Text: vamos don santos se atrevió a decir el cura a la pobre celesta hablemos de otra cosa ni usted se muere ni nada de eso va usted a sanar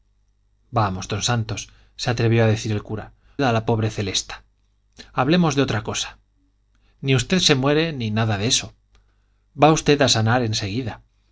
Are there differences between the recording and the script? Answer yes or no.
no